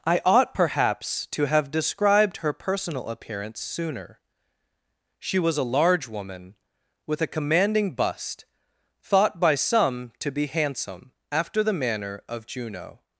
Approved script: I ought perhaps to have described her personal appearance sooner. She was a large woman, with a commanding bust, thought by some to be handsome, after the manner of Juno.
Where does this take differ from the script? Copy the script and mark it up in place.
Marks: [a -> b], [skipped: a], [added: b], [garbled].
I ought perhaps to have described her personal appearance sooner. She was a large woman, with a commanding bust, thought by some to be handsome, after the manner of Juno.